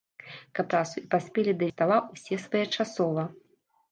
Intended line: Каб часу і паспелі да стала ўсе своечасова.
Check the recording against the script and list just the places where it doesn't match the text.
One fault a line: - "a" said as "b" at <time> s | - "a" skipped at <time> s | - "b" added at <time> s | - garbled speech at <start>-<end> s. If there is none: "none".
none